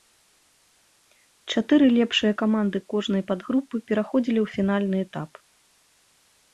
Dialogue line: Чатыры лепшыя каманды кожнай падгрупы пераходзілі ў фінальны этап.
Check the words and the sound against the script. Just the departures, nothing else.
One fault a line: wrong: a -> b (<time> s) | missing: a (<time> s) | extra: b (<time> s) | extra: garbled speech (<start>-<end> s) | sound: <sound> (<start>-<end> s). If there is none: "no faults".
no faults